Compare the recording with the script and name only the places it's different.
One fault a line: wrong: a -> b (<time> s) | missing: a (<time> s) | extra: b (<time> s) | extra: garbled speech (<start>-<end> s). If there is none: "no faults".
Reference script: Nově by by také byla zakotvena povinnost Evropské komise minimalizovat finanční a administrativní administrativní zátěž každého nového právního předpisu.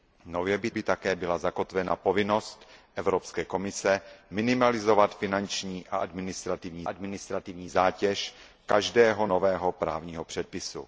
no faults